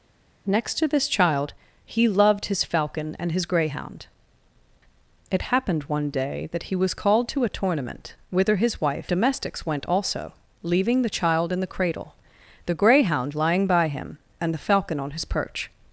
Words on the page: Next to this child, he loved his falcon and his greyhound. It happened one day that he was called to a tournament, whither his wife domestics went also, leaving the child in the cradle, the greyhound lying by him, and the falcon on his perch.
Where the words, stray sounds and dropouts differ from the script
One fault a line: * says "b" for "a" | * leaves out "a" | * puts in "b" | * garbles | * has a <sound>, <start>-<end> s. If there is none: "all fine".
all fine